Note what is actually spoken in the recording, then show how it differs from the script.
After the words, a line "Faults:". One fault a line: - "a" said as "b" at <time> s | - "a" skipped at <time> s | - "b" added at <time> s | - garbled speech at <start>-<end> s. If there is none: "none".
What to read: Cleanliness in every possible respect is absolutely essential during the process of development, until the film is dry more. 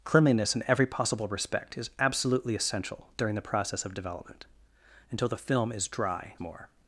Cleanliness in every possible respect is absolutely essential during the process of development, until the film is dry more.
Faults:
none